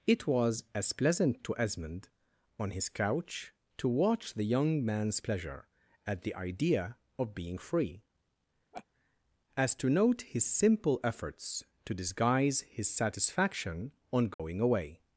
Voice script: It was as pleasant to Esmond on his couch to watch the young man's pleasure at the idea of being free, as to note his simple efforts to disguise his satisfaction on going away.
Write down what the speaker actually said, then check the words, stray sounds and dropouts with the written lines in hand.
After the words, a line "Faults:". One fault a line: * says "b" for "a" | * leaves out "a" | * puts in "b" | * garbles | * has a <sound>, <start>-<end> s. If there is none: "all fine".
It was as pleasant to Esmond on his couch to watch the young man's pleasure at the idea of being free, as to note his simple efforts to disguise his satisfaction on going away.
Faults:
* has a laugh, 8.7-8.9 s
* has a dropout, 14.3-14.4 s